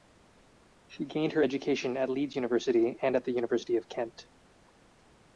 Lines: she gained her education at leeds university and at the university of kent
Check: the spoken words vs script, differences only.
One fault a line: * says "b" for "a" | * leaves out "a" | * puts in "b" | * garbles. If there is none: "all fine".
all fine